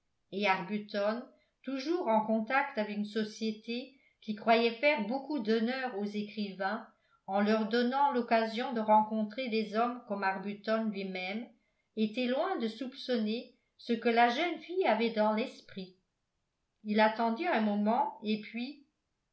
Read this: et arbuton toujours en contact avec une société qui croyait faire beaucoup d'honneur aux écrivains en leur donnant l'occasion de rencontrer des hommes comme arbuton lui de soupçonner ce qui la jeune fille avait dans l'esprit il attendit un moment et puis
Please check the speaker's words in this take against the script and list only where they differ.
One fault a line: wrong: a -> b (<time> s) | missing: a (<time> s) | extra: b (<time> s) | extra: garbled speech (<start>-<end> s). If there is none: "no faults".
extra: même était loin (11.0 s)
wrong: qui -> que (13.9 s)